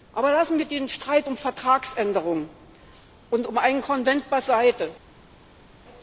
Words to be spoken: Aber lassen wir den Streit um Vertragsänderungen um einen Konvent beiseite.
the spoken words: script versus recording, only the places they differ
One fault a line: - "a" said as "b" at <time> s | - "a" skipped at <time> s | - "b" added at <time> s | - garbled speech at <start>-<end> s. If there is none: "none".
- "und" added at 3.3 s